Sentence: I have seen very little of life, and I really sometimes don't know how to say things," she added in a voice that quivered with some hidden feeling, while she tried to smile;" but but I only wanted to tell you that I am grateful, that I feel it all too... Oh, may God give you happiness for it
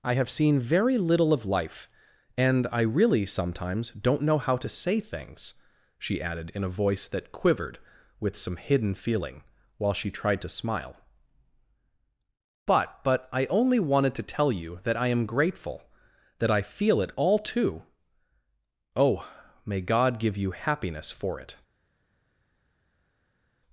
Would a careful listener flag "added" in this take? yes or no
no